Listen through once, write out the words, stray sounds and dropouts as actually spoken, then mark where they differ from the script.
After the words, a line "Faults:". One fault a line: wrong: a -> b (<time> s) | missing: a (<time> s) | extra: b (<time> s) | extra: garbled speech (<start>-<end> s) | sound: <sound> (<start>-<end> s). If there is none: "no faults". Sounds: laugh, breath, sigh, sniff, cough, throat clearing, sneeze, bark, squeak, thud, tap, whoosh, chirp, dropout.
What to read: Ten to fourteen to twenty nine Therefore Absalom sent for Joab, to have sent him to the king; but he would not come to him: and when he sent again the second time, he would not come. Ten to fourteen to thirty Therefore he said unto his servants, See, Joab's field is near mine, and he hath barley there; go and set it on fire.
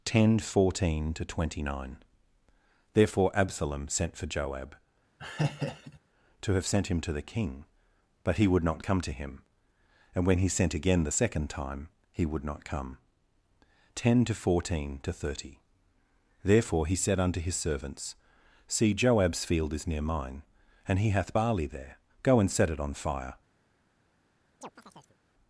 Ten fourteen to twenty nine Therefore Absalom sent for Joab, to have sent him to the king; but he would not come to him: and when he sent again the second time, he would not come. Ten to fourteen to thirty Therefore he said unto his servants, See, Joab's field is near mine, and he hath barley there; go and set it on fire.
Faults:
missing: to (0.4 s)
sound: laugh (5.2-6.0 s)
sound: chirp (24.6-25.2 s)